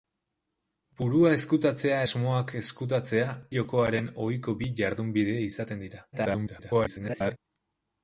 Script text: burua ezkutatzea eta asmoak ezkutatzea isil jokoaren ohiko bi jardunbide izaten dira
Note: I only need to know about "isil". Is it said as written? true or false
false